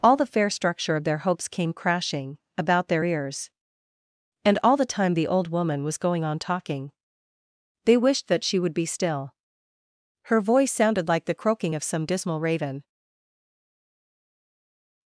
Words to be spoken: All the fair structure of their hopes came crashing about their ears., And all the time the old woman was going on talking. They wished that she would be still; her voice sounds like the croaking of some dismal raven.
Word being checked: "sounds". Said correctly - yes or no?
no